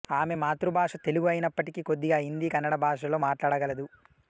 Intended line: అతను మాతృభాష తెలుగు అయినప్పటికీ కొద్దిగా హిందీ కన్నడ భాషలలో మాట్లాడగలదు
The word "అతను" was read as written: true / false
false